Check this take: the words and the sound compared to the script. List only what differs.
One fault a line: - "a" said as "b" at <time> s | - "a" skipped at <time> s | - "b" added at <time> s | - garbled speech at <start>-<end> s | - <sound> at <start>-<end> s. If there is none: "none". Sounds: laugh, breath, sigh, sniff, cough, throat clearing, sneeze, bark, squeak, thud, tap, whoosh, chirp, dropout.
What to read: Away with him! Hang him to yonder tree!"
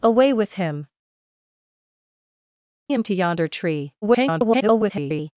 - "Hang" skipped at 0.9 s
- garbled speech at 4.0-5.3 s